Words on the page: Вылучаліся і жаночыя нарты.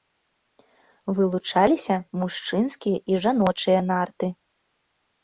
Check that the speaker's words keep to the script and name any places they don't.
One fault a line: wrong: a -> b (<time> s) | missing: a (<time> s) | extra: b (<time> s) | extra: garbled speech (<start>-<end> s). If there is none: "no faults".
extra: мужчынскія (2.2 s)